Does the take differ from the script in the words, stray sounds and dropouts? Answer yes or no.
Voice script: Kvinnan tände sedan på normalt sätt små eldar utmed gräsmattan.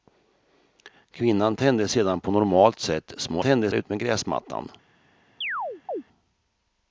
yes